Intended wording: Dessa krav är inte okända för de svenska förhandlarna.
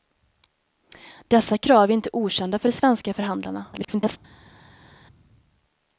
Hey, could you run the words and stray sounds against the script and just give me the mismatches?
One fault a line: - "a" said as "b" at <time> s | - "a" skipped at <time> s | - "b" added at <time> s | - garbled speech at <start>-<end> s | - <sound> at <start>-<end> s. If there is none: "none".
- garbled speech at 3.7-4.2 s